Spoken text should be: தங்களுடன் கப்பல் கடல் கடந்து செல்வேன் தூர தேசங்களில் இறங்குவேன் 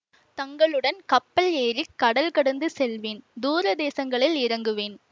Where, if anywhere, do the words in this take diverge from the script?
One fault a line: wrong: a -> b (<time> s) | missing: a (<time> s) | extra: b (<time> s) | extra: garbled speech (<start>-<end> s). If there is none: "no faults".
extra: ஏறி (1.6 s)